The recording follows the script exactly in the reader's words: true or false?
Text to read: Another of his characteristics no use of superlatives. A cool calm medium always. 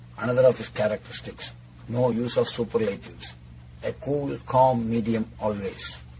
true